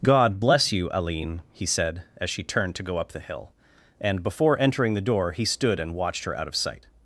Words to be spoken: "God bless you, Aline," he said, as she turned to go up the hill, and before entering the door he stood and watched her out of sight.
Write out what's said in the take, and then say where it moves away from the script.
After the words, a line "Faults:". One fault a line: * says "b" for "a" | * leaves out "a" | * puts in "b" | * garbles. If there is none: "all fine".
"God bless you, Aline," he said, as she turned to go up the hill, and before entering the door he stood and watched her out of sight.
Faults:
all fine